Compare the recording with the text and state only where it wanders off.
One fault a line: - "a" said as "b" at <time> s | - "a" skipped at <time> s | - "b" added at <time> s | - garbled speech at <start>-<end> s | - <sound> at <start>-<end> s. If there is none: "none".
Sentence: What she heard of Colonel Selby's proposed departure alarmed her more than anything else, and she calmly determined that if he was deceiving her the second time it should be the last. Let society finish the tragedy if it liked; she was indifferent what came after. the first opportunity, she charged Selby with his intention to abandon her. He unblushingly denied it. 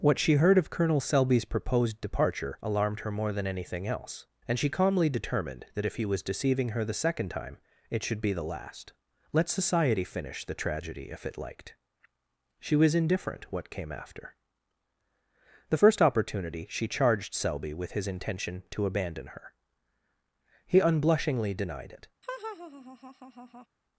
- laugh at 22.2-23.7 s